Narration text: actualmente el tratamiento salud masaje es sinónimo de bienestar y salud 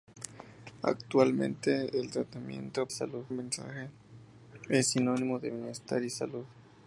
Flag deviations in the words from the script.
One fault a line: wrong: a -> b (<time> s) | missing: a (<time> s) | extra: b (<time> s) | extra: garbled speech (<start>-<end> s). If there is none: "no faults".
no faults